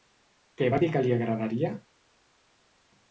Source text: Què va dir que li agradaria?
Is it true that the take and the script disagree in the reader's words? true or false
false